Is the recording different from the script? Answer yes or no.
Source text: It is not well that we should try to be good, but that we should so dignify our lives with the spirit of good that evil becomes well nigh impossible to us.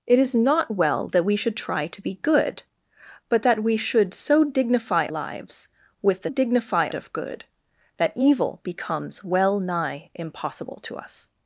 yes